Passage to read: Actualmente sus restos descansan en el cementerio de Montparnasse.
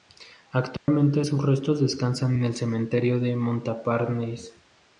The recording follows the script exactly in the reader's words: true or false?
true